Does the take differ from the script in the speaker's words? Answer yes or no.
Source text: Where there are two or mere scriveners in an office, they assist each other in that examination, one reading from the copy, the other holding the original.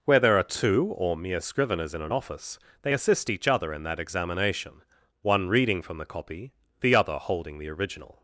no